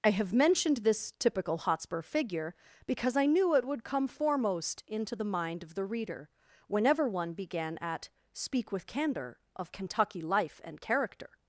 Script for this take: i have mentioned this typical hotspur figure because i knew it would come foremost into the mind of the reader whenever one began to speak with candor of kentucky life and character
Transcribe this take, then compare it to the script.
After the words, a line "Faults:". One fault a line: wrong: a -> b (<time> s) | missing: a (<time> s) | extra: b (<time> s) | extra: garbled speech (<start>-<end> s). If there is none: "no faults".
i have mentioned this typical hotspur figure because i knew it would come foremost into the mind of the reader whenever one began at speak with candor of kentucky life and character
Faults:
wrong: to -> at (7.8 s)